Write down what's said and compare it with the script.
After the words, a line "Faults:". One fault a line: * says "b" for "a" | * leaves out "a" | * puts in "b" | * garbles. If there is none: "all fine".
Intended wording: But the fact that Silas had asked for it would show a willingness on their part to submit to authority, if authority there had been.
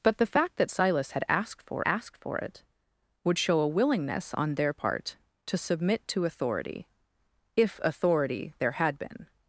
But the fact that Silas had asked for asked for it would show a willingness on their part to submit to authority, if authority there had been.
Faults:
* puts in "asked for"